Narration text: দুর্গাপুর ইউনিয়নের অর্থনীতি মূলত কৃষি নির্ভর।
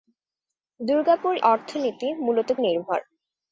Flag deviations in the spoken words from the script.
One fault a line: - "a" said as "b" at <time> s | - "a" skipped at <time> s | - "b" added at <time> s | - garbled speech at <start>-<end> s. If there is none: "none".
- "ইউনিয়নের" skipped at 1.3 s
- "কৃষি" skipped at 2.5 s